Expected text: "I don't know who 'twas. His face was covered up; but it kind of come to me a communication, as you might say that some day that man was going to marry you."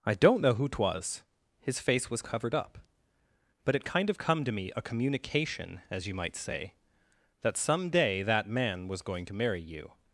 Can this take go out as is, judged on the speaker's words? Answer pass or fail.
pass